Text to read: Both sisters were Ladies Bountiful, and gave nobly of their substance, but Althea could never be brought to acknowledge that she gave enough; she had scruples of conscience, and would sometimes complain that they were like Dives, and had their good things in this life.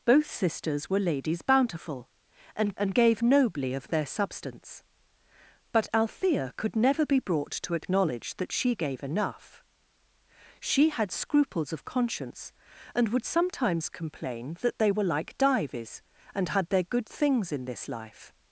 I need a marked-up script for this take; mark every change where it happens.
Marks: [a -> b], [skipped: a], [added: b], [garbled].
Both sisters were Ladies Bountiful, and [added: and] gave nobly of their substance, but Althea could never be brought to acknowledge that she gave enough; she had scruples of conscience, and would sometimes complain that they were like Dives, and had their good things in this life.